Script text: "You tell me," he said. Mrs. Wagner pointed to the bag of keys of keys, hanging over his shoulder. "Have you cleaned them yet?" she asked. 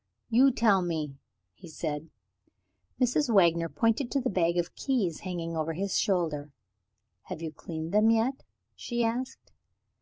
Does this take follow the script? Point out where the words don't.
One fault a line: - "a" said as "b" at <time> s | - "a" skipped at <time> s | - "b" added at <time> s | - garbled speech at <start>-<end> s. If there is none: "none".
- "of keys" skipped at 5.2 s